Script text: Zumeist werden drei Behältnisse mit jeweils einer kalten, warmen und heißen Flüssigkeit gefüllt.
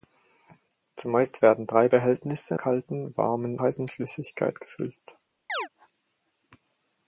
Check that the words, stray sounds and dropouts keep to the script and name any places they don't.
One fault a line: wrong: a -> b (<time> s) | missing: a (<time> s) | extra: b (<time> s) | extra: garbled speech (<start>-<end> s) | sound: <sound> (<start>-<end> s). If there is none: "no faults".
missing: mit jeweils einer (2.6 s)
missing: und (3.6 s)
sound: chirp (5.5-5.7 s)